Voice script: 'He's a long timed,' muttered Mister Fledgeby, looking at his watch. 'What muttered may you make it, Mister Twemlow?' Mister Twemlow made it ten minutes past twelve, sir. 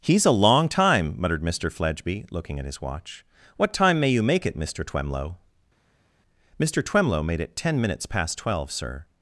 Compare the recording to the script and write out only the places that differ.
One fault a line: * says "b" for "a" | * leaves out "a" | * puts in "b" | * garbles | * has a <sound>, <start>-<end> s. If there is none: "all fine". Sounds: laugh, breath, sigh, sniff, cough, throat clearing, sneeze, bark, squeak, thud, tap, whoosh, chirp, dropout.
* says "time" for "timed"
* says "time" for "muttered"